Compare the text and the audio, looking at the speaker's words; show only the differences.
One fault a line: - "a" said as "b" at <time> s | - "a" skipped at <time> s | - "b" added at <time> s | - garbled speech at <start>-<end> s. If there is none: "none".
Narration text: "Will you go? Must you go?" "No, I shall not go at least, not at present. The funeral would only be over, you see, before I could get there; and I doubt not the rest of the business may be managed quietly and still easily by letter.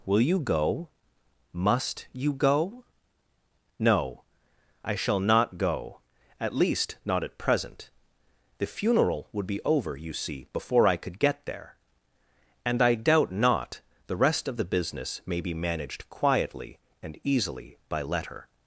- "only" skipped at 9.5 s
- "still" skipped at 17.2 s